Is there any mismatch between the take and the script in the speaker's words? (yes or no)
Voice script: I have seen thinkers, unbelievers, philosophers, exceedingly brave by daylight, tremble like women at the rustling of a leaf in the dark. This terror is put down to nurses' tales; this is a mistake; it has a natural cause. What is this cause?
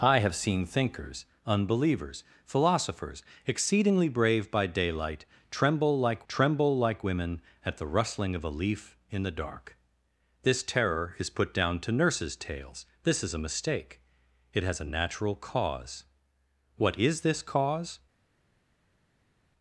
yes